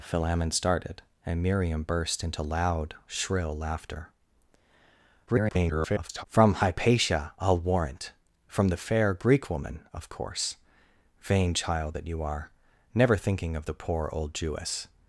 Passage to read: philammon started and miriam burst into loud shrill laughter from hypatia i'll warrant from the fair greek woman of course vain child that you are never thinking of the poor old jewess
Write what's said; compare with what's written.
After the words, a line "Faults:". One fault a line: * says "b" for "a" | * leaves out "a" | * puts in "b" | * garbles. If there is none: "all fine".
philammon started and miriam burst into loud shrill laughter [garbled] from hypatia i'll warrant from the fair greek woman of course vain child that you are never thinking of the poor old jewess
Faults:
* garbles